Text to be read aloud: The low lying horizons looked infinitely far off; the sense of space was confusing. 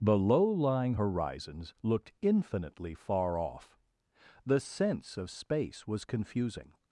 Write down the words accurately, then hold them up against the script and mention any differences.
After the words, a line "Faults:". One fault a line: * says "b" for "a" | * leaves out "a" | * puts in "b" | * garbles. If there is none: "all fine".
The low lying horizons looked infinitely far off; the sense of space was confusing.
Faults:
all fine